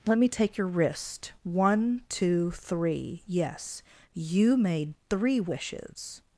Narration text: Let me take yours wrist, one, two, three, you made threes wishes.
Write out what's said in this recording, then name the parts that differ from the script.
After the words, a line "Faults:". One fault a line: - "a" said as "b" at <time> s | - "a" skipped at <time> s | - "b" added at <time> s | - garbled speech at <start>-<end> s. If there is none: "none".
Let me take your wrist, one, two, three, yes, you made three wishes.
Faults:
- "yours" said as "your" at 0.6 s
- "yes" added at 3.3 s
- "threes" said as "three" at 5.1 s